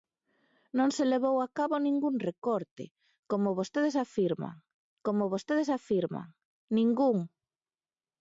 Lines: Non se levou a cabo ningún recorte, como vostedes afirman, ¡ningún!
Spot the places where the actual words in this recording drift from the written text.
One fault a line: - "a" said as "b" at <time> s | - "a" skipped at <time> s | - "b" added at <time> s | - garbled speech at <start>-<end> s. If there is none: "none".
- "como vostedes afirman" added at 5.1 s